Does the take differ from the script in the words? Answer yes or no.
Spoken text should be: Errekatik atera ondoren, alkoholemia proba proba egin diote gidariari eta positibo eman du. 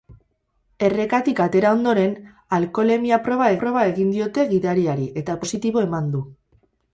no